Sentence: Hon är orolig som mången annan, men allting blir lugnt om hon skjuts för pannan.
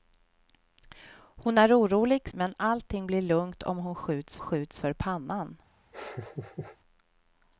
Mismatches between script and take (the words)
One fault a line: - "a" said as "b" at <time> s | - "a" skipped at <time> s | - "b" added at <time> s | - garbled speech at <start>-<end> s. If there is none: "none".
- "som mången annan" skipped at 2.3 s
- "skjuts" added at 4.4 s